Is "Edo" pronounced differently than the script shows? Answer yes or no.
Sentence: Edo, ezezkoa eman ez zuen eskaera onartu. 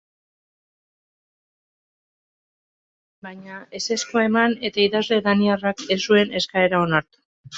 yes